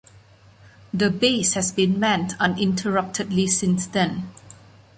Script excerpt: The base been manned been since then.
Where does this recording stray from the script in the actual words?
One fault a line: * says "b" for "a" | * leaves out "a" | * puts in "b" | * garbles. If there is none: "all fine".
* puts in "has"
* says "uninterruptedly" for "been"